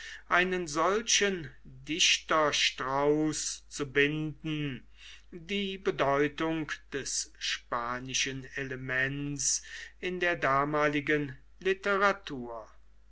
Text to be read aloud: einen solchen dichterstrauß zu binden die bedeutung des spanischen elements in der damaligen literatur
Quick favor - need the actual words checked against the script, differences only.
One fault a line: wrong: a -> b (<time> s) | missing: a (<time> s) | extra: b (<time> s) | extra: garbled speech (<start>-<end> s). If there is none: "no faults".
no faults